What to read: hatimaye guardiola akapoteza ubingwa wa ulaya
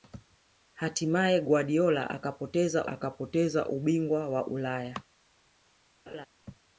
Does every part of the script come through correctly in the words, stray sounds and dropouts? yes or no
no